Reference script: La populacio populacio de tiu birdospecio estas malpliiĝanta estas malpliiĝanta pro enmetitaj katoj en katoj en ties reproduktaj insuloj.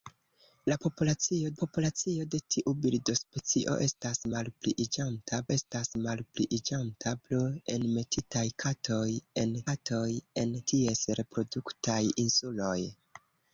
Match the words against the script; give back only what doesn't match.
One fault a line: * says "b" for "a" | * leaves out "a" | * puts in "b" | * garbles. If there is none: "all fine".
all fine